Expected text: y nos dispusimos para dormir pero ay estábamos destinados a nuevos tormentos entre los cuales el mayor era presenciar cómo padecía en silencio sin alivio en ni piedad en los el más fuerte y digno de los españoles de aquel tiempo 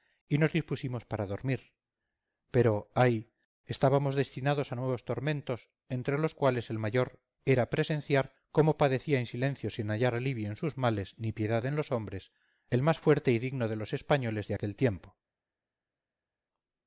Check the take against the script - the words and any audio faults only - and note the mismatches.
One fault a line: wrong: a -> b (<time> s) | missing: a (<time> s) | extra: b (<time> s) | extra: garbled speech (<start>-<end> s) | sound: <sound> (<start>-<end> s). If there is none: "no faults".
extra: hallar (9.9 s)
extra: sus males (10.6 s)
extra: hombres (11.9 s)